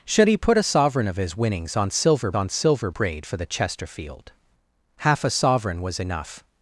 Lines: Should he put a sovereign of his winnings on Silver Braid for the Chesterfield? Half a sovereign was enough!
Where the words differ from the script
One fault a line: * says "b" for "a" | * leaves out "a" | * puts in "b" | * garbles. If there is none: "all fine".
* puts in "on Silver"